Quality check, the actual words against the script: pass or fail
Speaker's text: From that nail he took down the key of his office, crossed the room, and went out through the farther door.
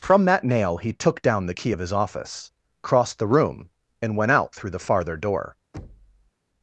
pass